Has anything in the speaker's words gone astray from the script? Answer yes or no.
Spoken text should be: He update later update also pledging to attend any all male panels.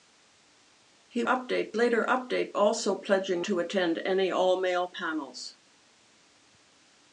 no